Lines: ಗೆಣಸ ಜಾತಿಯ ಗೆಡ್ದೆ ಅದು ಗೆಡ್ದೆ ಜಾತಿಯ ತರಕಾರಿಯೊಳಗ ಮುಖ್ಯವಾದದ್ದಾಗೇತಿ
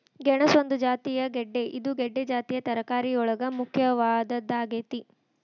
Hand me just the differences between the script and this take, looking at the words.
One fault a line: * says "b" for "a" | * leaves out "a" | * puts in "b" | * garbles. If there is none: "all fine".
* puts in "ಒಂದು"
* says "ಇದು" for "ಅದು"